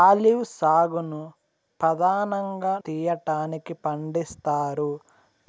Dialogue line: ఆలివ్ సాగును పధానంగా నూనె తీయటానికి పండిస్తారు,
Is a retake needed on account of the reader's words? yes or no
yes